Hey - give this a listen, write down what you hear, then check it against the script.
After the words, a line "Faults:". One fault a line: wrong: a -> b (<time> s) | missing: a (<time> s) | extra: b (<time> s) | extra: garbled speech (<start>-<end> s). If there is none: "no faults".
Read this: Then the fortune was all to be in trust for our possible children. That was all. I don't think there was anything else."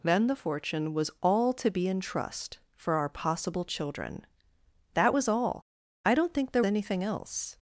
Then the fortune was all to be in trust for our possible children. That was all. I don't think there anything else."
Faults:
missing: was (6.6 s)